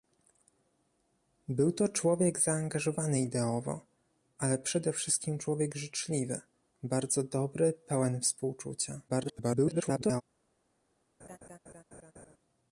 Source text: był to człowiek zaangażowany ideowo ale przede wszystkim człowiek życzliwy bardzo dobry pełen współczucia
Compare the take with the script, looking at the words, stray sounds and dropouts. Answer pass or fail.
fail